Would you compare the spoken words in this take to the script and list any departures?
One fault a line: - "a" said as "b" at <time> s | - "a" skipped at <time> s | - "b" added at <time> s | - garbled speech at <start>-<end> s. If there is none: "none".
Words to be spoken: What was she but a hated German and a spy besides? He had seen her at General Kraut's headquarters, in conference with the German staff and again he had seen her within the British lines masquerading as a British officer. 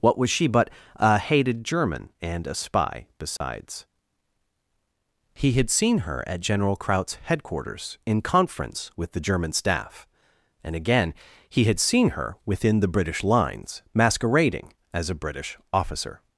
none